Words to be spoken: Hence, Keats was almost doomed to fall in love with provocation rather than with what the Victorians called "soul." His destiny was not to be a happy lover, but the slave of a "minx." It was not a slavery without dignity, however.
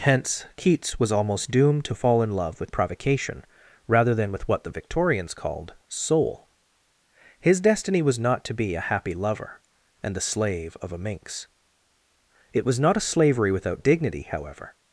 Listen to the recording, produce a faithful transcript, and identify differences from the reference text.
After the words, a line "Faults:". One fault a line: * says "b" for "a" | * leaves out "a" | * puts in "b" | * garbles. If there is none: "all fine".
Hence, Keats was almost doomed to fall in love with provocation rather than with what the Victorians called "soul." His destiny was not to be a happy lover, and the slave of a "minx." It was not a slavery without dignity, however.
Faults:
* says "and" for "but"